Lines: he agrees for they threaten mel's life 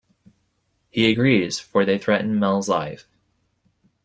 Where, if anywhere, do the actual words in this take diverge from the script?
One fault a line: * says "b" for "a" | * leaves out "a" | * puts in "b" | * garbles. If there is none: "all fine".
all fine